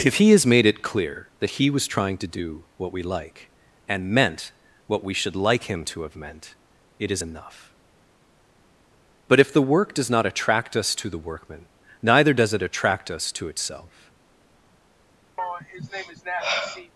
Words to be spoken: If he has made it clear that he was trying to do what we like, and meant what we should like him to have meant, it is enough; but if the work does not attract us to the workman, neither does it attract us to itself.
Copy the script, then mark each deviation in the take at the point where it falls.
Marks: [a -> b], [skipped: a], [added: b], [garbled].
If he has made it clear that he was trying to do what we like, and meant what we should like him to have meant, it is enough; but if the work does not attract us to the workman, neither does it attract us to itself.